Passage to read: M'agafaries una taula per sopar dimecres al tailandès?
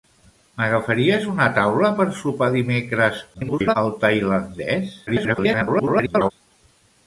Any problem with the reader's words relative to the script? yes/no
yes